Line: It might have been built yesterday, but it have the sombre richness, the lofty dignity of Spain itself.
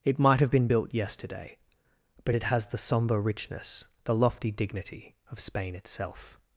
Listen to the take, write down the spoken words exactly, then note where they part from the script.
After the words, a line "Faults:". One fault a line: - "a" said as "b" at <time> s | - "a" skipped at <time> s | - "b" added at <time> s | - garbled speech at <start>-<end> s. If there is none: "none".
It might have been built yesterday, but it has the sombre richness, the lofty dignity of Spain itself.
Faults:
- "have" said as "has" at 2.4 s